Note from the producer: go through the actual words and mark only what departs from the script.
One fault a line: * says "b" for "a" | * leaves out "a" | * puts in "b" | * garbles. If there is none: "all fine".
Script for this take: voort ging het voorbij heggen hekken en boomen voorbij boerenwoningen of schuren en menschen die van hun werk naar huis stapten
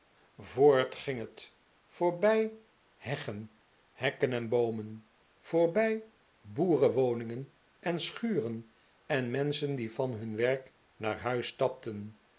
* says "en" for "of"